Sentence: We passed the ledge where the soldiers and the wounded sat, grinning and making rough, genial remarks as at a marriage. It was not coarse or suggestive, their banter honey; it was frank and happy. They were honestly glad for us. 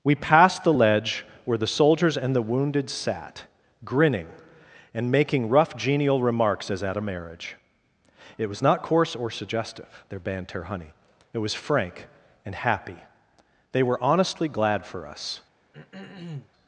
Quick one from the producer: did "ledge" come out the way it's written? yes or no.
yes